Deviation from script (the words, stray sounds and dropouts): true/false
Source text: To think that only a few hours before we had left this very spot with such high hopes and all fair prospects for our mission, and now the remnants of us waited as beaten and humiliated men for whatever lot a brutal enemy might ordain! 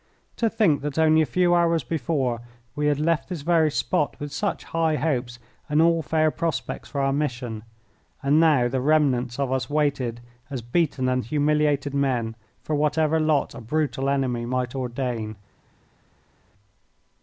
false